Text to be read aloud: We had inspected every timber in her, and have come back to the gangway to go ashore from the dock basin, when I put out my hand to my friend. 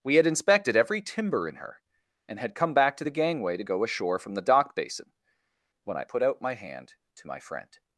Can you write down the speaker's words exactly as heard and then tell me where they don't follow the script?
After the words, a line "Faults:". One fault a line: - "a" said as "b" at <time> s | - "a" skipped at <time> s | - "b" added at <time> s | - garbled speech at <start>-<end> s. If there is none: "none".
We had inspected every timber in her, and had come back to the gangway to go ashore from the dock basin, when I put out my hand to my friend.
Faults:
- "have" said as "had" at 2.4 s